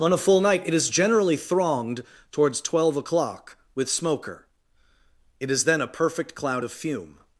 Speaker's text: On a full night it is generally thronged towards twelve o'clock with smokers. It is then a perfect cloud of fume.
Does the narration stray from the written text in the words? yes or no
yes